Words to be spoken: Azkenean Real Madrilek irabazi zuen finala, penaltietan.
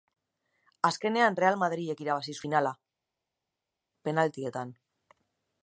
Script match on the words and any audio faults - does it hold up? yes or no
no